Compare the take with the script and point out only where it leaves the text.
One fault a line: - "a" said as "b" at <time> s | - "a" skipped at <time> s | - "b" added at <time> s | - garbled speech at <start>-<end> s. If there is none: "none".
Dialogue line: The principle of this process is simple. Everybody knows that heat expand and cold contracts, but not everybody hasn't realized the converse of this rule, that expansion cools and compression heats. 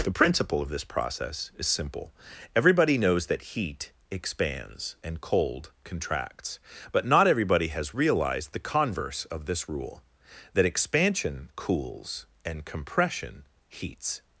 - "expand" said as "expands" at 4.1 s
- "hasn't" said as "has" at 7.7 s